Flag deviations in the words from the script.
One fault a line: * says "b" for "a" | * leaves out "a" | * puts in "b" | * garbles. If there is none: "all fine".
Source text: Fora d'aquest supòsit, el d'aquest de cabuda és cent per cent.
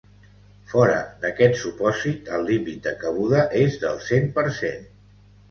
* says "límit" for "d'aquest"
* puts in "del"